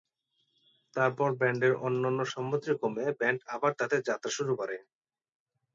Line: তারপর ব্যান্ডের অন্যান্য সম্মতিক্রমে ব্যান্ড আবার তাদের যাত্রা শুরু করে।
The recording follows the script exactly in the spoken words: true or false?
true